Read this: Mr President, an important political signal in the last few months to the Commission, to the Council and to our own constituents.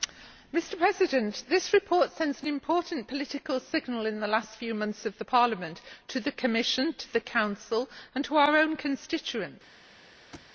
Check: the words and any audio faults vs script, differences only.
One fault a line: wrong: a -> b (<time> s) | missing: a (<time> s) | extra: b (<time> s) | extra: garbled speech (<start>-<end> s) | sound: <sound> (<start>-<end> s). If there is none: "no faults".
extra: this report sends (1.5 s)
extra: of Parliament (5.0 s)
sound: thud (10.3-10.5 s)